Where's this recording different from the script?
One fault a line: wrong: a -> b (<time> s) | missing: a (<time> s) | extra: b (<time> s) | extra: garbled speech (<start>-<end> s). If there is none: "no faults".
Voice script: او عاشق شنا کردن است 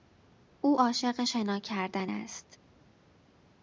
no faults